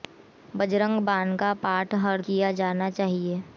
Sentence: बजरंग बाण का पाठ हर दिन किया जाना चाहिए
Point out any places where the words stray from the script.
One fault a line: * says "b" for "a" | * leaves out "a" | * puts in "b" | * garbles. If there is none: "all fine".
* leaves out "दिन"